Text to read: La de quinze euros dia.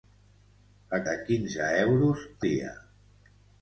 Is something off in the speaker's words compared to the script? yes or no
no